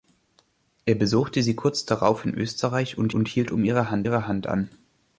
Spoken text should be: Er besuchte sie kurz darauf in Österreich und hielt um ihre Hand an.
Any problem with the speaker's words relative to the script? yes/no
yes